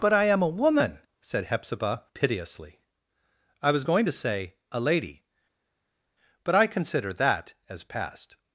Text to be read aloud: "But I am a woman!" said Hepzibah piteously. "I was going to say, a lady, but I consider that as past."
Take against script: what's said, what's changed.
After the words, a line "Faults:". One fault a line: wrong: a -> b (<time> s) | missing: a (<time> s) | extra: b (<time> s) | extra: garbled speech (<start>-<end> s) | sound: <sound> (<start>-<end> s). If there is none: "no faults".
"But I am a woman!" said Hepzibah piteously. "I was going to say, a lady, but I consider that as past."
Faults:
no faults